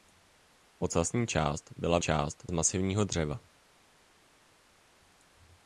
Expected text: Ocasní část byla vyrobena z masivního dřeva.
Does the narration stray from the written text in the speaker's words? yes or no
yes